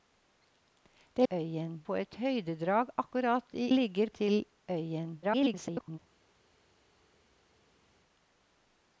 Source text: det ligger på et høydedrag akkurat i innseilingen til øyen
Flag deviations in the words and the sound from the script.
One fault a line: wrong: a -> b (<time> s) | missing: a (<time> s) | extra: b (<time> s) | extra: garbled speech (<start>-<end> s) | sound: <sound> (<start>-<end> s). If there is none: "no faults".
wrong: ligger -> øyen (1.3 s)
wrong: innseilingen -> ligger (3.7 s)
extra: garbled speech (5.2-6.0 s)